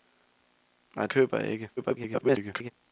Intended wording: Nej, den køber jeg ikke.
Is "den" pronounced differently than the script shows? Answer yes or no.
yes